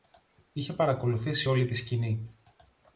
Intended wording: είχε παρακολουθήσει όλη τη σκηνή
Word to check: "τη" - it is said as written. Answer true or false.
true